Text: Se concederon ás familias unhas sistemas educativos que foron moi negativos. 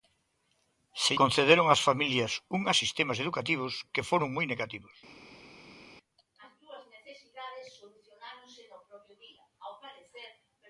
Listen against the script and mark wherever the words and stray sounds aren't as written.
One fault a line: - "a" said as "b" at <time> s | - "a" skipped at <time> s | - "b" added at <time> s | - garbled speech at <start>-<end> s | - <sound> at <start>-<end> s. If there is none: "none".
none